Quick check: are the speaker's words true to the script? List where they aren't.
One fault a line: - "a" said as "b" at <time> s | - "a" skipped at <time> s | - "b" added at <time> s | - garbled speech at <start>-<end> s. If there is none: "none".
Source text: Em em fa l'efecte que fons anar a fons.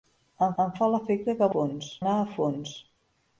none